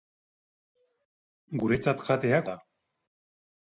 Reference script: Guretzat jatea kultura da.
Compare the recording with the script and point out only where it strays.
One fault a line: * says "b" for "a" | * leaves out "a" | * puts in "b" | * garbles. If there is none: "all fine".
* leaves out "kultura"